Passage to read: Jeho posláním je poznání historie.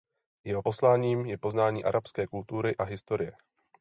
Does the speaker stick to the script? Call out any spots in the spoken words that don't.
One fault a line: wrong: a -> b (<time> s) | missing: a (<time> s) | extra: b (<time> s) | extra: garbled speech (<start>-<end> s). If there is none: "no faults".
extra: arabské kultury a (1.8 s)